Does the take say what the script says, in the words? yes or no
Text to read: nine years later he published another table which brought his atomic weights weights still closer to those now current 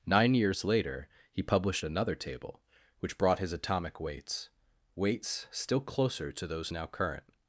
yes